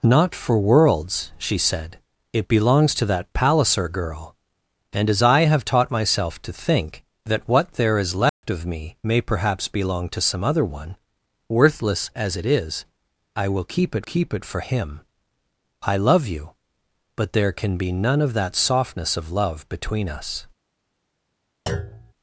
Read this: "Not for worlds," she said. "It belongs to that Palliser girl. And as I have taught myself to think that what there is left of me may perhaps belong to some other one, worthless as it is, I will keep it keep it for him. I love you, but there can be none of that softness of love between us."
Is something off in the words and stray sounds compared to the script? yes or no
yes